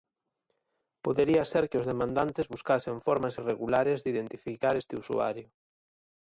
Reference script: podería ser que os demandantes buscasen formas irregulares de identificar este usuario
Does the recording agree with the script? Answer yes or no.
yes